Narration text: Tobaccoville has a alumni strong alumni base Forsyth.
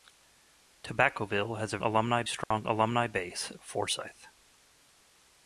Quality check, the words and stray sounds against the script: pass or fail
fail